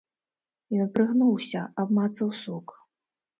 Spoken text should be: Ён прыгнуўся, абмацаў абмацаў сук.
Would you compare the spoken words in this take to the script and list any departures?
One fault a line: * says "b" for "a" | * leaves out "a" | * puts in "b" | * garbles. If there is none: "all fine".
* leaves out "абмацаў"